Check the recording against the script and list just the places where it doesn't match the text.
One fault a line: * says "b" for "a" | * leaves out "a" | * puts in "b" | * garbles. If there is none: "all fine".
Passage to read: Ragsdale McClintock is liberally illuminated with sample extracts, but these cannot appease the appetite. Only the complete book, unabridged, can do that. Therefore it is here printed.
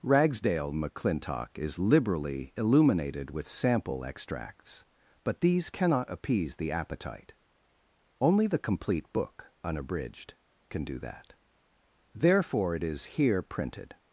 all fine